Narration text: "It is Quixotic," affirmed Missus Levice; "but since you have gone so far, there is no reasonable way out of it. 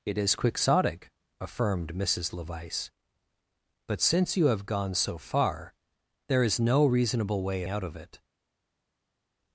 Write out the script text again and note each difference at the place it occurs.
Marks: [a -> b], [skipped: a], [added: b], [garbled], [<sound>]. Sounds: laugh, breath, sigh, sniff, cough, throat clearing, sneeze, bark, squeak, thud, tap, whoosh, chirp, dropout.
"It is Quixotic," affirmed Missus Levice; "but since you have gone so far, there is no reasonable way out of it.